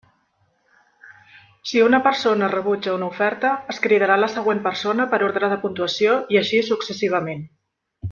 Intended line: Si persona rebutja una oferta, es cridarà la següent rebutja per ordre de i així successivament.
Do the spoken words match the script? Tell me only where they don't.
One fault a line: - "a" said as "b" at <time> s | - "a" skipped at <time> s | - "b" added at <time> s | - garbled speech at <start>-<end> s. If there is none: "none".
- "una" added at 1.9 s
- "rebutja" said as "persona" at 4.7 s
- "puntuació" added at 5.7 s